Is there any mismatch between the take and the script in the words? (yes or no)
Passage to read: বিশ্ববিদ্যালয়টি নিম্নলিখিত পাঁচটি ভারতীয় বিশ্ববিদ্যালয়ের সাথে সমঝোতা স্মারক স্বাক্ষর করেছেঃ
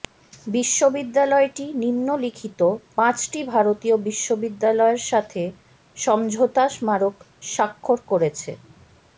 no